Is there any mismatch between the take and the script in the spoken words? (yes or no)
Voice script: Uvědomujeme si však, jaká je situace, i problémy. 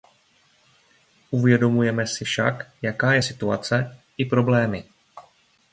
no